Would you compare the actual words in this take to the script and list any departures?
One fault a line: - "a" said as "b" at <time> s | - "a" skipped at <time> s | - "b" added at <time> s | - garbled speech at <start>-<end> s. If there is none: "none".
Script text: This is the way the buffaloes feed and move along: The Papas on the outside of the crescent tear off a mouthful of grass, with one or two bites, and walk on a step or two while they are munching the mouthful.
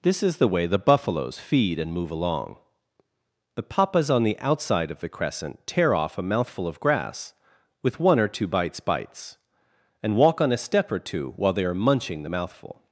- "bites" added at 8.8 s